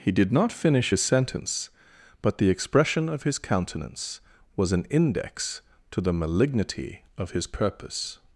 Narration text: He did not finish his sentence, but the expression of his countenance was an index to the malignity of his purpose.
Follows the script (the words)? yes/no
yes